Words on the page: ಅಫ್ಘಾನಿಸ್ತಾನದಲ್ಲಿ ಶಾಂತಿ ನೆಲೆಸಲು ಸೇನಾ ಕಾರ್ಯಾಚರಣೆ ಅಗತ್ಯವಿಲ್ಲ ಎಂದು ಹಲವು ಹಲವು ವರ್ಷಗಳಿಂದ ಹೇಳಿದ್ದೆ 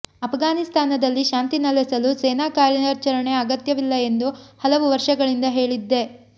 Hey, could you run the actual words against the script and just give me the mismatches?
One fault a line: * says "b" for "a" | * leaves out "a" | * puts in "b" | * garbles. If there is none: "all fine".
* leaves out "ಹಲವು"